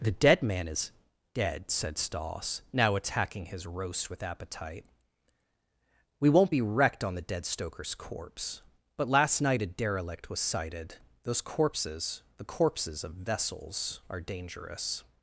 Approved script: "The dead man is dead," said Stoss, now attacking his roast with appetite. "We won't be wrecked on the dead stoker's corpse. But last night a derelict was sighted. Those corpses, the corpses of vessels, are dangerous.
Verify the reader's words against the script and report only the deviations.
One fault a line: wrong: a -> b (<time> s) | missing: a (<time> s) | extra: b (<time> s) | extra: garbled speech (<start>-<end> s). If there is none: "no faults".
no faults